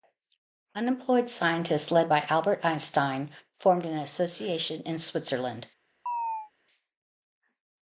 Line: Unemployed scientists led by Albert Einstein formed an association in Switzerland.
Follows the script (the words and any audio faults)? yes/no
no